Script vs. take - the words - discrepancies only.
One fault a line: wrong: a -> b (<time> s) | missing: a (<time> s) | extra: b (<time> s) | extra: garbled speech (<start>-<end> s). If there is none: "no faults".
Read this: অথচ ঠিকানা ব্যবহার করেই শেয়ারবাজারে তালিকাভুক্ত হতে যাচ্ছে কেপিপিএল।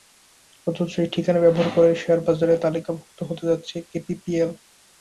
extra: এই (1.0 s)